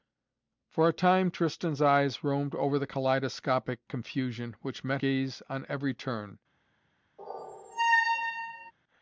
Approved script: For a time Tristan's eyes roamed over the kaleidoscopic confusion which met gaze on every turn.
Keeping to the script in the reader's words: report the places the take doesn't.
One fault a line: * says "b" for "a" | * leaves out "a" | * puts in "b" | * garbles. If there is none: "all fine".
all fine